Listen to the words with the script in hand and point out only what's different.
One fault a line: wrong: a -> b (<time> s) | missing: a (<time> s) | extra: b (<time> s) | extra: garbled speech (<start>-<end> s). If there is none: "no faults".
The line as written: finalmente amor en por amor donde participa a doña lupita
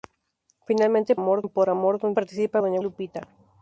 no faults